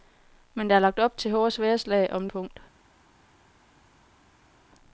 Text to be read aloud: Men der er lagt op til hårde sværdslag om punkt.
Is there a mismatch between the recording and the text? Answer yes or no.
no